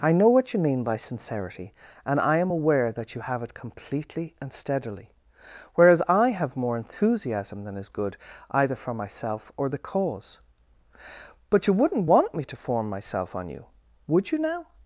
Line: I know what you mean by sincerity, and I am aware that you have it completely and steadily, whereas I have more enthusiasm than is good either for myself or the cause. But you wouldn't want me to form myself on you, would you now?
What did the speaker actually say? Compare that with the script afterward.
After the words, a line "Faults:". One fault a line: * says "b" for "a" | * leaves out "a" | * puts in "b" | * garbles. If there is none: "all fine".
I know what you mean by sincerity, and I am aware that you have it completely and steadily, whereas I have more enthusiasm than is good either for myself or the cause. But you wouldn't want me to form myself on you, would you now?
Faults:
all fine